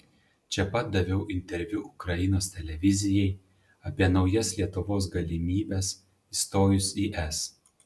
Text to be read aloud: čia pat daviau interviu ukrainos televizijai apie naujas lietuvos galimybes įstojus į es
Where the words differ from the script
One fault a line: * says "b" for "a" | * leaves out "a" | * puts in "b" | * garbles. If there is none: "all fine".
all fine